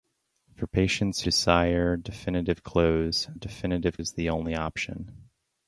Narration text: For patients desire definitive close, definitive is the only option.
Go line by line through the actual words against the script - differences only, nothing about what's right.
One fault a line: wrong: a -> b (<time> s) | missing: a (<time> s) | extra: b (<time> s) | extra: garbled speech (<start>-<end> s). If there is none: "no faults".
no faults